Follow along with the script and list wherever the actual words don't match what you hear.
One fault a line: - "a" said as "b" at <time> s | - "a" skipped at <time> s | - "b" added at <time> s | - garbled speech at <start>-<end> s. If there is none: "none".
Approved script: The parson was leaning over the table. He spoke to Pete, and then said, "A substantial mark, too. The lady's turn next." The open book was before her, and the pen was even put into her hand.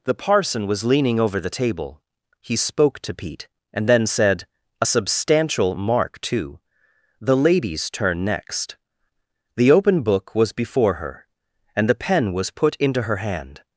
- "even" skipped at 12.5 s